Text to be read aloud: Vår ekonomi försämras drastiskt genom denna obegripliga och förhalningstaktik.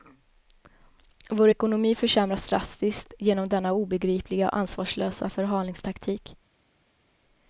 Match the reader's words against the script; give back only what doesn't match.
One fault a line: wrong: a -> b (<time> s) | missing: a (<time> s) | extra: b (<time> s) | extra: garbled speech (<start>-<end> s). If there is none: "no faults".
extra: ansvarslösa (4.6 s)